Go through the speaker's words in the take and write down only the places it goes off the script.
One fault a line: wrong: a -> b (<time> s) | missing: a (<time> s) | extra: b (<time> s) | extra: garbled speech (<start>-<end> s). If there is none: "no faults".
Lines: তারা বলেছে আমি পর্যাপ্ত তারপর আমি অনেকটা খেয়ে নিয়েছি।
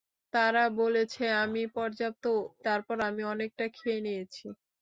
no faults